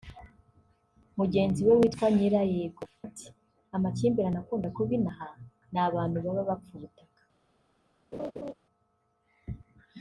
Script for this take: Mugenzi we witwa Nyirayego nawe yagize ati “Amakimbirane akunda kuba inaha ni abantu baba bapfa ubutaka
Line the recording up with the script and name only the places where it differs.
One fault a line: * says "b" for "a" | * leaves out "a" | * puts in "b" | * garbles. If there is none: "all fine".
* leaves out "nawe yagize"